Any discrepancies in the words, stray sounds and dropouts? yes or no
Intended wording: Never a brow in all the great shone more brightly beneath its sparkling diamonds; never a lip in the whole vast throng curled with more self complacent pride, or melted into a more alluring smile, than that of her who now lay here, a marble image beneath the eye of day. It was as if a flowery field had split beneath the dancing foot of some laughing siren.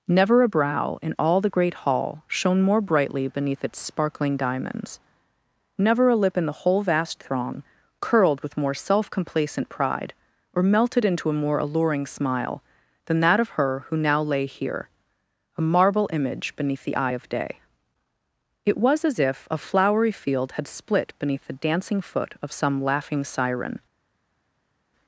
yes